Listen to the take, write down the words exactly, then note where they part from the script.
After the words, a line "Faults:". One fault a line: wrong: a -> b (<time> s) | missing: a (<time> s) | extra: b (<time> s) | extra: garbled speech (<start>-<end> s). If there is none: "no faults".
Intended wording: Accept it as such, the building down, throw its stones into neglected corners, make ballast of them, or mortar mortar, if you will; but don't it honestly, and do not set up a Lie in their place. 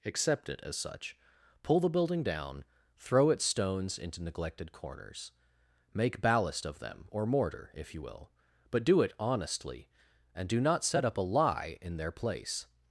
Accept it as such, pull the building down, throw its stones into neglected corners, make ballast of them, or mortar, if you will; but do it honestly, and do not set up a Lie in their place.
Faults:
extra: pull (1.6 s)
missing: mortar (7.7 s)
wrong: don't -> do (8.8 s)